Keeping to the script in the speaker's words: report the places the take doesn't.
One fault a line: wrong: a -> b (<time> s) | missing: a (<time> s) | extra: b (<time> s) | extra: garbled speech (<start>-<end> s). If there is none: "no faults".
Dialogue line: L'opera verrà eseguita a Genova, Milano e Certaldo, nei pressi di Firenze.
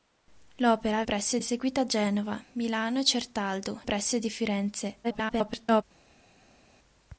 wrong: verrà -> pressi (1.0 s)
missing: nei (3.8 s)
extra: garbled speech (5.0-5.8 s)